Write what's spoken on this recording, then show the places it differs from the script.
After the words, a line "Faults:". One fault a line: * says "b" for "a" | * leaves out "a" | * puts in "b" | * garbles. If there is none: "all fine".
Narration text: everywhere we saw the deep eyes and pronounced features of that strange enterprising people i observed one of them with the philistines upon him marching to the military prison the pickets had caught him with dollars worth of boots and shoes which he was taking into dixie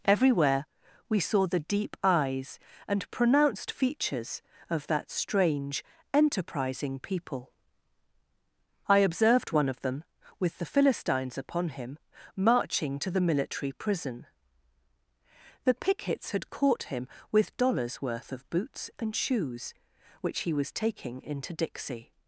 everywhere we saw the deep eyes and pronounced features of that strange enterprising people i observed one of them with the philistines upon him marching to the military prison the pickets had caught him with dollars worth of boots and shoes which he was taking into dixie
Faults:
all fine